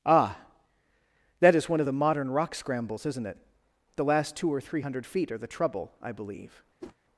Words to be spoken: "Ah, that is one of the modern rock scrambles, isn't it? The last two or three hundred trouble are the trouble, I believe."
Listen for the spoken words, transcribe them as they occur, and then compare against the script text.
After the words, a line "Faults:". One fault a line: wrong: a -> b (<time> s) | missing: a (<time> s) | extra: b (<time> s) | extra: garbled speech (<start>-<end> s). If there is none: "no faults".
"Ah, that is one of the modern rock scrambles, isn't it? The last two or three hundred feet are the trouble, I believe."
Faults:
wrong: trouble -> feet (5.1 s)